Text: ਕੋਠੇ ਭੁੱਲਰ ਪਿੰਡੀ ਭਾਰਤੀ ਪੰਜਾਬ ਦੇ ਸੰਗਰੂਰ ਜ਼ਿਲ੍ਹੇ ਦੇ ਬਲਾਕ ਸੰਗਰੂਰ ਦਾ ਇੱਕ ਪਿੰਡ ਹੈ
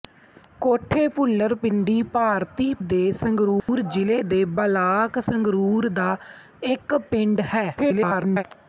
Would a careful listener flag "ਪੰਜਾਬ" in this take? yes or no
yes